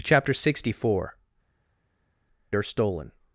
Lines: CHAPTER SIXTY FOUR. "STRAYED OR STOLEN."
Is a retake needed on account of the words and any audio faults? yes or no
yes